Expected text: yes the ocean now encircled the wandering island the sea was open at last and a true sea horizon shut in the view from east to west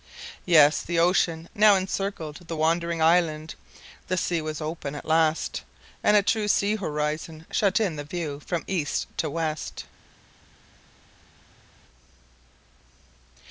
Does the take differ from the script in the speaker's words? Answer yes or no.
no